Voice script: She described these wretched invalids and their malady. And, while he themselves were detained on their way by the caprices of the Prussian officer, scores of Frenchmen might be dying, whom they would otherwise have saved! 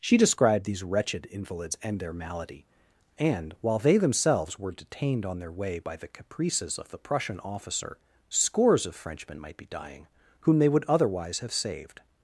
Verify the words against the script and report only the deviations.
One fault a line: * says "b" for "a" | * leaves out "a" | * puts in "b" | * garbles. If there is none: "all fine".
* says "they" for "he"